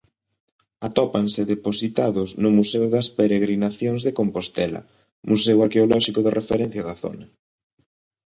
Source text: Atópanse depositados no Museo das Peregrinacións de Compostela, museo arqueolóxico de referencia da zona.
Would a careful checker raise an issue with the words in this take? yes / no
no